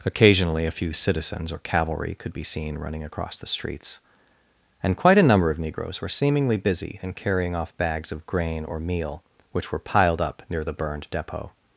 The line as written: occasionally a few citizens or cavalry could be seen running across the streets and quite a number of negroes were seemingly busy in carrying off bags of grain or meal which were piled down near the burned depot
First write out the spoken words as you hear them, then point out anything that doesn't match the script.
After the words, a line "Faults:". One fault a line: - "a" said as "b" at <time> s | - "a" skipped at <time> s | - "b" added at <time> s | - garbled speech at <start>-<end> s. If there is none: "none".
occasionally a few citizens or cavalry could be seen running across the streets and quite a number of negroes were seemingly busy in carrying off bags of grain or meal which were piled up near the burned depot
Faults:
- "down" said as "up" at 10.2 s